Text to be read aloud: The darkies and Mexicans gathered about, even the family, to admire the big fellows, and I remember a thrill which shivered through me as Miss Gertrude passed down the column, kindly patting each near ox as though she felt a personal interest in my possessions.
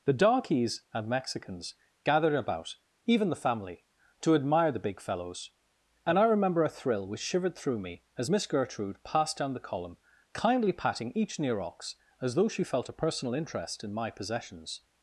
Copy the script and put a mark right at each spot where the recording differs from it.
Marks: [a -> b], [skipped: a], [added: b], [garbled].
The darkies and Mexicans gathered about, even the family, to admire the big fellows, and I remember a thrill which shivered through me as Miss Gertrude passed down the column, kindly patting each near ox as though she felt a personal interest in my possessions.